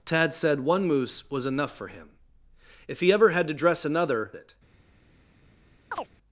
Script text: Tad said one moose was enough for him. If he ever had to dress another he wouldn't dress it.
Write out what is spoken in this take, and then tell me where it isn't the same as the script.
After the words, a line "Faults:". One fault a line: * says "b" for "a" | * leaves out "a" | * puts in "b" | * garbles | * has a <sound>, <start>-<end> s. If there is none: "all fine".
Tad said one moose was enough for him. If he ever had to dress another it.
Faults:
* leaves out "he wouldn't dress"
* has a chirp, 5.9-6.1 s